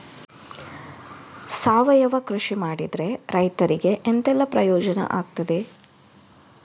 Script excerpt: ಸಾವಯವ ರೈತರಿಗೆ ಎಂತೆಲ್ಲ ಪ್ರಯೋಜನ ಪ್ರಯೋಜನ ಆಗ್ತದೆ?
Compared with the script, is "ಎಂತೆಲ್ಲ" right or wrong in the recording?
right